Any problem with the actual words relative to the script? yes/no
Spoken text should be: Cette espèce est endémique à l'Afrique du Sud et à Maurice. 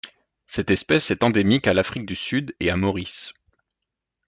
no